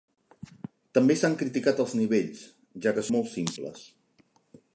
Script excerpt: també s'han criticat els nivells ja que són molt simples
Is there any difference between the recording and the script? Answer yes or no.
yes